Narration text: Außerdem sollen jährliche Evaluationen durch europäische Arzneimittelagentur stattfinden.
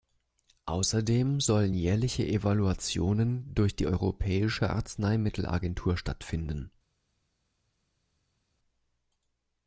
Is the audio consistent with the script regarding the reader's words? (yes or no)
no